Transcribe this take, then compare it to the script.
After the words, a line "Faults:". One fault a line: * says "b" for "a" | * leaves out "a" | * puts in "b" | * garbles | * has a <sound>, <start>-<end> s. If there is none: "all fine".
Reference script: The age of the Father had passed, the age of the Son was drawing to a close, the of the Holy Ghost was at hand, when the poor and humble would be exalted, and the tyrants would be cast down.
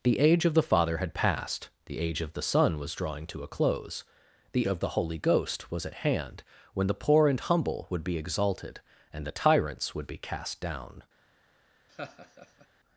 The age of the Father had passed, the age of the Son was drawing to a close, the of the Holy Ghost was at hand, when the poor and humble would be exalted, and the tyrants would be cast down.
Faults:
* has a laugh, 11.9-12.7 s